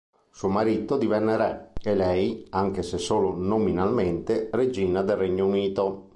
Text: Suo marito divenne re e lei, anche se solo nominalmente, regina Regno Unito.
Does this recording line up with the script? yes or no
no